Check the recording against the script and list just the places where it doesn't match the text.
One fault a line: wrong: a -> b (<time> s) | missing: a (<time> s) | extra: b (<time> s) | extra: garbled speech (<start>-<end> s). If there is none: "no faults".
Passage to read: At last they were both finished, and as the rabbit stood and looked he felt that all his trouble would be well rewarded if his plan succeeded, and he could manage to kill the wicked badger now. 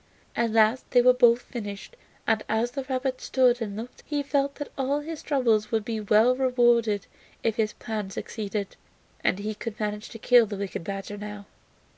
no faults